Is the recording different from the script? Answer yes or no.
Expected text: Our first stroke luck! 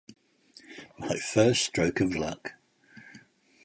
yes